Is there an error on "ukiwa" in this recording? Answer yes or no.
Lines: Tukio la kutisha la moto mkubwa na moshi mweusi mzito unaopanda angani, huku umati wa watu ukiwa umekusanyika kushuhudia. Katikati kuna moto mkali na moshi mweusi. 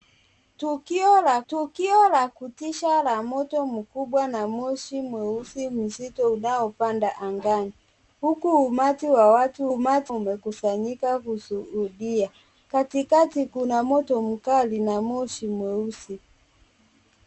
yes